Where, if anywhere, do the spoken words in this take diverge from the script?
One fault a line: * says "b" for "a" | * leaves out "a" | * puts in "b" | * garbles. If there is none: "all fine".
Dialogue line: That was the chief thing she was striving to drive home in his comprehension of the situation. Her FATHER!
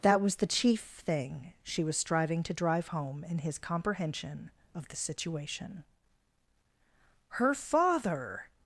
all fine